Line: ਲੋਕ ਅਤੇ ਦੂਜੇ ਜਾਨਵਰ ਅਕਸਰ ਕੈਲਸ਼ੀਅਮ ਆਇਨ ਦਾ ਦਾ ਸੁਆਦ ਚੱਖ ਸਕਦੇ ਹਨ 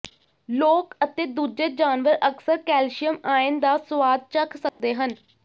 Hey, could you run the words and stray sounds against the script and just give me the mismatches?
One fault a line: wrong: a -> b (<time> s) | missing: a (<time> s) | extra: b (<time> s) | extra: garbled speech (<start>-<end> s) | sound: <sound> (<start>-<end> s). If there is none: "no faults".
missing: ਦਾ (3.8 s)
sound: dropout (4.7-4.8 s)